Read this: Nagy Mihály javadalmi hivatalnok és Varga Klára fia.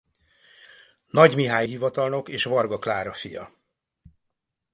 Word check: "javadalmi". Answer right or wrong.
wrong